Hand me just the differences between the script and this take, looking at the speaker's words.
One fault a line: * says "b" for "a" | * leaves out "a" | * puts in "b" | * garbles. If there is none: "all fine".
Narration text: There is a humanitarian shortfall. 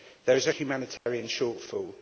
all fine